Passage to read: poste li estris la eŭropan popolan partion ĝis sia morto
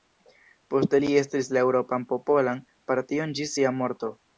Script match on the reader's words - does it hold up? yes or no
yes